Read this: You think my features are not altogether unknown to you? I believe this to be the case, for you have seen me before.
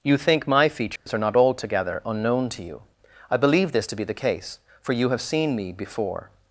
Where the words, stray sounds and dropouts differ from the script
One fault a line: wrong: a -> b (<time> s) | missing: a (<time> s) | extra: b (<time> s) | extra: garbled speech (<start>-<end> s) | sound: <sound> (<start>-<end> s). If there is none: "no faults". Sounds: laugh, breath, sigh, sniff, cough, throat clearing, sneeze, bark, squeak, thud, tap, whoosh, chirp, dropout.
sound: dropout (1.0-1.1 s)